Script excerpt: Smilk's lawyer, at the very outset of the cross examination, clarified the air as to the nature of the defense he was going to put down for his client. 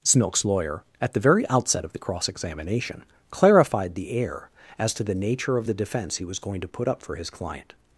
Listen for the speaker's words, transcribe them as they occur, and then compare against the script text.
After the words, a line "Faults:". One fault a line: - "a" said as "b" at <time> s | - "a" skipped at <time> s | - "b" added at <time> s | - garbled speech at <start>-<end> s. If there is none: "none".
Smilk's lawyer, at the very outset of the cross examination, clarified the air as to the nature of the defense he was going to put up for his client.
Faults:
- "down" said as "up" at 6.9 s